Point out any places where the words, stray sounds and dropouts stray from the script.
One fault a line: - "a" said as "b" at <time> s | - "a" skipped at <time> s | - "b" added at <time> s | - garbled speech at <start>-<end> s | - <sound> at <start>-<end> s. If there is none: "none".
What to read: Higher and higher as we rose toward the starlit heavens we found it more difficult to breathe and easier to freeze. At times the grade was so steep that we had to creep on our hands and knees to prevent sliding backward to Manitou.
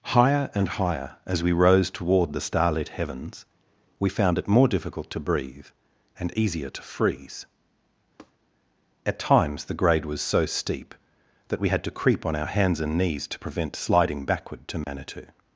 - tap at 8.2-8.3 s
- dropout at 14.8-14.9 s